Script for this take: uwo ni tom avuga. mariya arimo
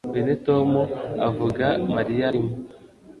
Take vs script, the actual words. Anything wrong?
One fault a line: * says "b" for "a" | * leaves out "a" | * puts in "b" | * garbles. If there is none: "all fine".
* says "uyu" for "uwo"